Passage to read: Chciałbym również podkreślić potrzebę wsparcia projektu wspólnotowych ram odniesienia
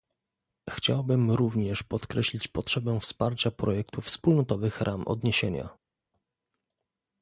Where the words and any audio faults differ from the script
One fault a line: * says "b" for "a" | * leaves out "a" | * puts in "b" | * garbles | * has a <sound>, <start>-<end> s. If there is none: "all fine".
all fine